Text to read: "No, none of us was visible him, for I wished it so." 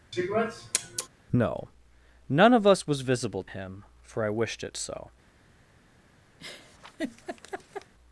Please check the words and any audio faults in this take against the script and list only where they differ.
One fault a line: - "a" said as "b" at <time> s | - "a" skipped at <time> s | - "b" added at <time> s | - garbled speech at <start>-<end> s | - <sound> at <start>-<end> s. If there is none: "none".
- sniff at 0.1-1.1 s
- laugh at 6.4-7.9 s